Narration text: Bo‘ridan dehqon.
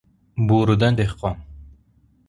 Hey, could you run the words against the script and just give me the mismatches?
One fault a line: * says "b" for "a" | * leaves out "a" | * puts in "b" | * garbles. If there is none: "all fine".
all fine